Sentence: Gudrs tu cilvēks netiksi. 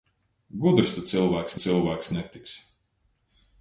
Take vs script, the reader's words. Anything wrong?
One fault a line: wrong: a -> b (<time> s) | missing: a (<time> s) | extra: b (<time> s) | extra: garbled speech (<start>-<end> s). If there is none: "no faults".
extra: cilvēks (1.6 s)